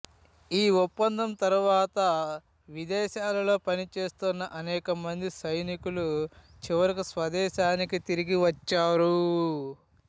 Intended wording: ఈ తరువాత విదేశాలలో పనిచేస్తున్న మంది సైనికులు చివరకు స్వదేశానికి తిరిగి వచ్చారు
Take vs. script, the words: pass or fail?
fail